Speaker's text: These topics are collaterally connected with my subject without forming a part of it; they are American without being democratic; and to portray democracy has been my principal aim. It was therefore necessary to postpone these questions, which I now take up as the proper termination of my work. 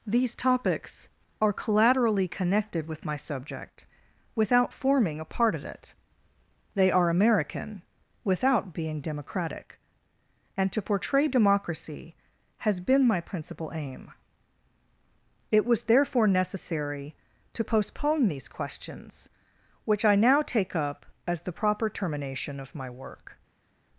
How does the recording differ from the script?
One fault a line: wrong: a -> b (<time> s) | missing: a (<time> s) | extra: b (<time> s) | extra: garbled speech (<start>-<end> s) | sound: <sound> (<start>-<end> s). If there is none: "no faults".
no faults